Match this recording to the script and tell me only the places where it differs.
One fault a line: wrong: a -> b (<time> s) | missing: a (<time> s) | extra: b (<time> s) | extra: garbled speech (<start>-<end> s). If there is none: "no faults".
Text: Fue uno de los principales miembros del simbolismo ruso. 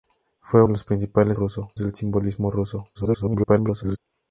missing: uno (0.6 s)
wrong: miembros -> ruso (1.3 s)
extra: garbled speech (2.9-4.0 s)